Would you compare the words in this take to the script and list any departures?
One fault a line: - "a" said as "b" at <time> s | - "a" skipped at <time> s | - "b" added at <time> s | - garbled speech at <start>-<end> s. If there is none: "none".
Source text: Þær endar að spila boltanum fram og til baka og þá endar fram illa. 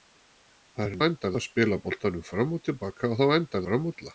none